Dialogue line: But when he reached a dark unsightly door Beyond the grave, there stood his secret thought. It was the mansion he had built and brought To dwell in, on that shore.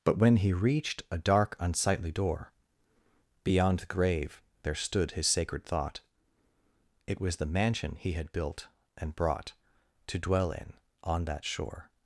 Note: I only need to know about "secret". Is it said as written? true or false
false